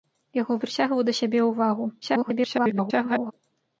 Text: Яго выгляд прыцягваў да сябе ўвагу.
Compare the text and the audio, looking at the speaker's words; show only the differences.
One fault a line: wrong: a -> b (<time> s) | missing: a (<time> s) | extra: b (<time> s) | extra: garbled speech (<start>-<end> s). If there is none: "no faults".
missing: выгляд (0.6 s)
extra: garbled speech (2.0-3.3 s)